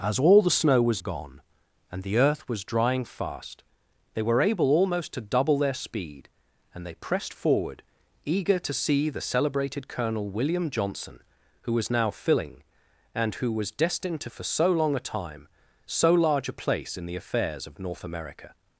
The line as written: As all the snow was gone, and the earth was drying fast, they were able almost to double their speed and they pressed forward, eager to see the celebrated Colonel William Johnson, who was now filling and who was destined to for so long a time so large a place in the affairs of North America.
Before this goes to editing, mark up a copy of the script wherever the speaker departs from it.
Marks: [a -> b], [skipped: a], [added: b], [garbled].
As all the snow was gone, and the earth was drying fast, they were able almost to double their speed and they pressed forward, eager to see the celebrated Colonel William Johnson, who was now filling and who was destined to for so long a time so large a place in the affairs of North America.